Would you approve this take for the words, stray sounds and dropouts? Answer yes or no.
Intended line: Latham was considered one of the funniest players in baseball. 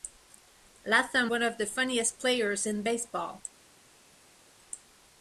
no